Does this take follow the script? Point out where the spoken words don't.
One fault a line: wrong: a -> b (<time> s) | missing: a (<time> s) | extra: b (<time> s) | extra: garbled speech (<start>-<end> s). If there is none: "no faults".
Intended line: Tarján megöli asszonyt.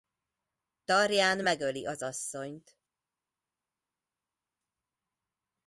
extra: az (1.8 s)